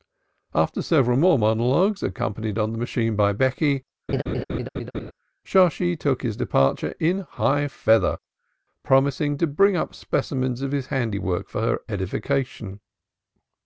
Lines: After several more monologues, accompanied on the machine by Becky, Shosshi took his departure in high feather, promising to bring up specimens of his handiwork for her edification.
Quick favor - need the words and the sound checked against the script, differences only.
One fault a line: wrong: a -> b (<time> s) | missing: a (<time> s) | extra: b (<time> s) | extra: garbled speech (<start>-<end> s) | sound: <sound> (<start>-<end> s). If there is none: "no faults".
sound: laugh (4.1-5.1 s)